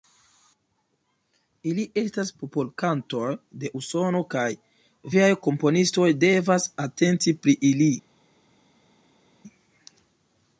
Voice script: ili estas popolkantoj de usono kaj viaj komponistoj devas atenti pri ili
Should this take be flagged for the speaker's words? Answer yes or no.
no